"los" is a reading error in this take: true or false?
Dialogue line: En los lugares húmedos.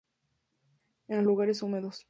false